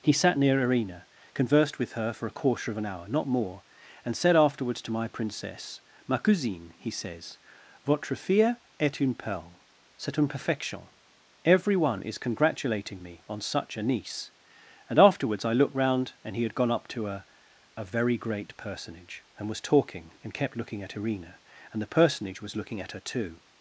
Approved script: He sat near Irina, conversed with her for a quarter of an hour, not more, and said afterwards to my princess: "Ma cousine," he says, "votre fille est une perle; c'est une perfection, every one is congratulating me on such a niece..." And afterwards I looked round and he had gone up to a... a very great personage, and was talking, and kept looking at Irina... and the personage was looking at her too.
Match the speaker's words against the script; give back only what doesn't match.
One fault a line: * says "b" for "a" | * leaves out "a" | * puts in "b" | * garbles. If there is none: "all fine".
all fine